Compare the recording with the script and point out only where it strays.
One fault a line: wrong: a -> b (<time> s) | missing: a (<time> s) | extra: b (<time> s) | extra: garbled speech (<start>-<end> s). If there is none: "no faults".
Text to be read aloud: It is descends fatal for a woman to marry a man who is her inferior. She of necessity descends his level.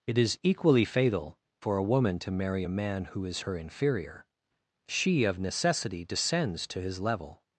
wrong: descends -> equally (0.4 s)
extra: to (6.7 s)